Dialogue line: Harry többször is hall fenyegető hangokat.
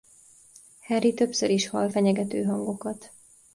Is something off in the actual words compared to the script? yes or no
no